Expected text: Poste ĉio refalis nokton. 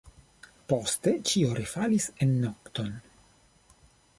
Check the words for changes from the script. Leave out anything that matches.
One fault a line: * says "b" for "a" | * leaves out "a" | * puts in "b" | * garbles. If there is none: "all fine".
* puts in "en"